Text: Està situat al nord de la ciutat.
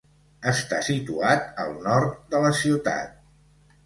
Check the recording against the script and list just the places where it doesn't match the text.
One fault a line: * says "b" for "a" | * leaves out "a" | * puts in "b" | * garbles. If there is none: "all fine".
all fine